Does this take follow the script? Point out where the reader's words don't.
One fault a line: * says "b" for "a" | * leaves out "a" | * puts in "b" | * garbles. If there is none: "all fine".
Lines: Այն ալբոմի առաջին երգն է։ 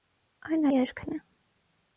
* leaves out "ալբոմի առաջին"